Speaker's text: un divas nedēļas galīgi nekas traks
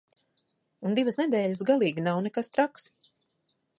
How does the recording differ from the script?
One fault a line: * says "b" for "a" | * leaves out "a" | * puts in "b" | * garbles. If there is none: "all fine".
* puts in "nav"